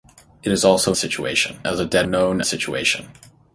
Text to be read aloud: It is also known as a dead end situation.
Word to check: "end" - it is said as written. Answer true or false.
false